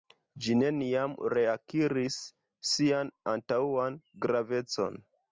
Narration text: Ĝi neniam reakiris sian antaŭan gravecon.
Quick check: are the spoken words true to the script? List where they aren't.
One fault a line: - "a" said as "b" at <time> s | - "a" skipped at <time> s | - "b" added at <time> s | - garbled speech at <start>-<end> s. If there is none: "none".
none